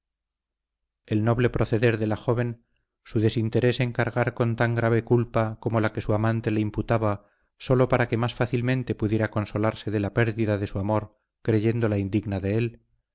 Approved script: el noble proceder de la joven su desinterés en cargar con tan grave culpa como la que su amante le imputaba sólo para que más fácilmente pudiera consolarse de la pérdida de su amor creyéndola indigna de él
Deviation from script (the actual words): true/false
false